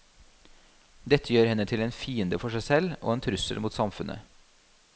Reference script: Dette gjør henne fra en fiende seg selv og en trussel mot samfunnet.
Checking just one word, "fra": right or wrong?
wrong